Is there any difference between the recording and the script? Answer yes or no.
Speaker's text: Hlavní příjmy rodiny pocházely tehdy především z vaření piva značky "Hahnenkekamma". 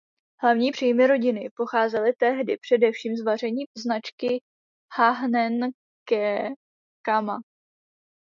yes